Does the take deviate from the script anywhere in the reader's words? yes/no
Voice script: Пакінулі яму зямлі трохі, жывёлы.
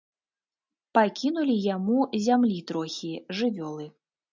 no